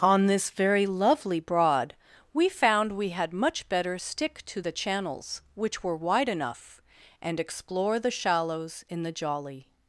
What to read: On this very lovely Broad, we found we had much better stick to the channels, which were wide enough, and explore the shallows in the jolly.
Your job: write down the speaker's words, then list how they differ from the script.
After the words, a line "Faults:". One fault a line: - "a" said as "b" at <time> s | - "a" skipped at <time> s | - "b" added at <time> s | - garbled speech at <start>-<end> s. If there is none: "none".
On this very lovely Broad, we found we had much better stick to the channels, which were wide enough, and explore the shallows in the jolly.
Faults:
none